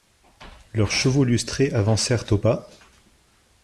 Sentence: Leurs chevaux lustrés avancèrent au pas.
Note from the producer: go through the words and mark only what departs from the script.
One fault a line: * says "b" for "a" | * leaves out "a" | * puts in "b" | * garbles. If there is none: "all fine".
all fine